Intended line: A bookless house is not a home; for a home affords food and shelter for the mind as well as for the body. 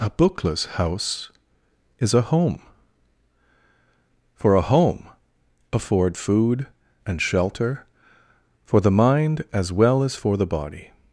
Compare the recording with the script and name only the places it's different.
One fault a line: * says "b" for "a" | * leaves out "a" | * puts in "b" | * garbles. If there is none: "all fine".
* leaves out "not"
* says "afford" for "affords"